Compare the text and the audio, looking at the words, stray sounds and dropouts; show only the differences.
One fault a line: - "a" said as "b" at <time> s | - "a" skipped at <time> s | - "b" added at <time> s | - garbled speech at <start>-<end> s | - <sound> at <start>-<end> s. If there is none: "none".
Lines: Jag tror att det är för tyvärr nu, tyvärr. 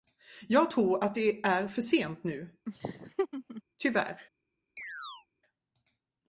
- "tyvärr" said as "sent" at 1.8 s
- laugh at 2.7-3.6 s
- chirp at 4.8-5.3 s